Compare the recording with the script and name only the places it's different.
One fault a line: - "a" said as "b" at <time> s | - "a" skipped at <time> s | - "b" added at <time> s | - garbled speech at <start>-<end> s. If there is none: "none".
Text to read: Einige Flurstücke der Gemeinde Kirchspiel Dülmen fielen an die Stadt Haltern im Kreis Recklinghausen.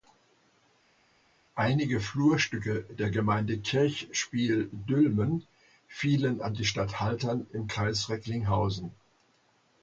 none